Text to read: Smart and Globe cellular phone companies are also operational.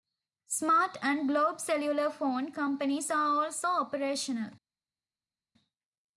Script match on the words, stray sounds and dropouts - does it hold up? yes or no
yes